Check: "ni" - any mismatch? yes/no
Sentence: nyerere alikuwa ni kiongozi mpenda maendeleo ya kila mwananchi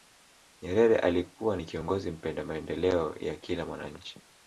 no